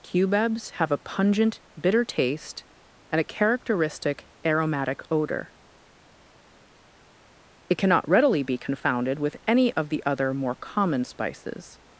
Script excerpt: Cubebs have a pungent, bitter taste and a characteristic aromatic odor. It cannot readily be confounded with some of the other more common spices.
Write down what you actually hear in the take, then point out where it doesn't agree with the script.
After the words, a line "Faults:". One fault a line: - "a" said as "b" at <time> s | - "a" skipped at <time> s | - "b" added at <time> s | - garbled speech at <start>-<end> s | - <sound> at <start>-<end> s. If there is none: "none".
Cubebs have a pungent, bitter taste and a characteristic aromatic odor. It cannot readily be confounded with any of the other more common spices.
Faults:
- "some" said as "any" at 9.5 s